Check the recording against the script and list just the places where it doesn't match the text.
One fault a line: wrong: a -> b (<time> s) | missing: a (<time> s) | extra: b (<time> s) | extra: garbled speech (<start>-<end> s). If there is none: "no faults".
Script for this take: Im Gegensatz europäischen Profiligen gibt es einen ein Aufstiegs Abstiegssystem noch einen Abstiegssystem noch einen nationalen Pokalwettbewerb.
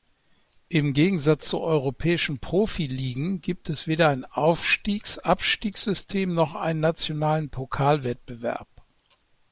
extra: zu (1.5 s)
wrong: einen -> weder (3.9 s)
missing: Abstiegssystem noch einen (6.8 s)